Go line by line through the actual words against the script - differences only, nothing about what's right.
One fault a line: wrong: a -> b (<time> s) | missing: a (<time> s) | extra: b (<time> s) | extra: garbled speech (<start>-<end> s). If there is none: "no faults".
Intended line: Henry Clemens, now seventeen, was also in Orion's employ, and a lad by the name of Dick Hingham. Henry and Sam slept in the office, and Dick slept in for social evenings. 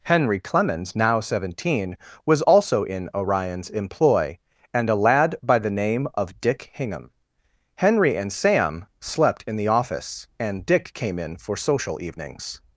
wrong: slept -> came (10.9 s)